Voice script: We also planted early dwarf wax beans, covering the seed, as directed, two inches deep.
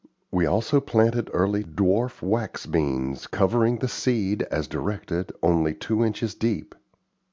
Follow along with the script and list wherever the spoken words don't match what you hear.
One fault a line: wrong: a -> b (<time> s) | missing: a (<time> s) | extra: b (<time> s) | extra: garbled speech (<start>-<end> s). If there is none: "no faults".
extra: only (5.4 s)